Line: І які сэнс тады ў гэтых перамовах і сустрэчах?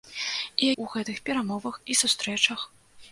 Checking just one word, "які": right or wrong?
wrong